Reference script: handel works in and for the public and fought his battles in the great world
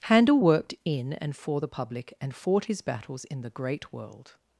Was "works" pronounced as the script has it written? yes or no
no